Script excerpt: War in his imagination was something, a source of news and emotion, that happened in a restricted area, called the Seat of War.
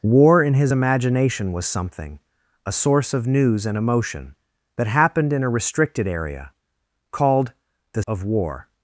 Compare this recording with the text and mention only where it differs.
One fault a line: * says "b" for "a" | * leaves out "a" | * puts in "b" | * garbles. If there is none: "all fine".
* leaves out "Seat"